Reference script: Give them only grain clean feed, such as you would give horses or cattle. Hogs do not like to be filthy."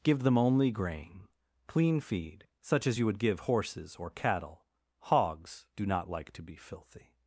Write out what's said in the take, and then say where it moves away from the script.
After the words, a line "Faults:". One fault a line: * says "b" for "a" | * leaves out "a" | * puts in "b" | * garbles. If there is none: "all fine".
Give them only grain clean feed, such as you would give horses or cattle. Hogs do not like to be filthy."
Faults:
all fine